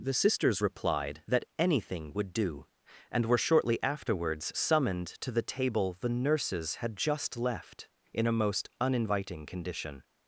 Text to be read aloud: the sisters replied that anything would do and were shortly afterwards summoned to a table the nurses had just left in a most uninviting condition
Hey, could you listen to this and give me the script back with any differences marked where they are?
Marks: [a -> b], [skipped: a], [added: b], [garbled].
the sisters replied that anything would do and were shortly afterwards summoned to [a -> the] table the nurses had just left in a most uninviting condition